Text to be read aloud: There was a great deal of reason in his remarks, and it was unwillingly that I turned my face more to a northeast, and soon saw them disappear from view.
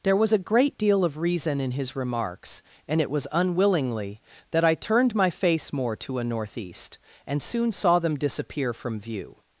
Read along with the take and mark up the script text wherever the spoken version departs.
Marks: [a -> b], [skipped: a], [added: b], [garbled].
There was a great deal of reason in his remarks, and it was unwillingly that I turned my face more to a northeast, and soon saw them disappear from view.